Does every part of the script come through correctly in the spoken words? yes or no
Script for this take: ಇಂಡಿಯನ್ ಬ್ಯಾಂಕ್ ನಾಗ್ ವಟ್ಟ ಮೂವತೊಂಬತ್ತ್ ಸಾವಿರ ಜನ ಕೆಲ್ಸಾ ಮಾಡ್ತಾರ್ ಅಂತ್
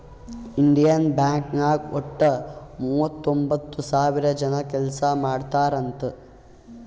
yes